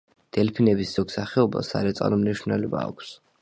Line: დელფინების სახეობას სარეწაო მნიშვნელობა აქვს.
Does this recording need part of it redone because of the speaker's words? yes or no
yes